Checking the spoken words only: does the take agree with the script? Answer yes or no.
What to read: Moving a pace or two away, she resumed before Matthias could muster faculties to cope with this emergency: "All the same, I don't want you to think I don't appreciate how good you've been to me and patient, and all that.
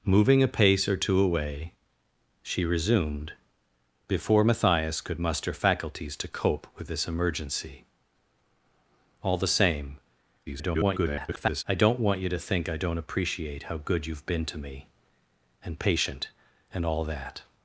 no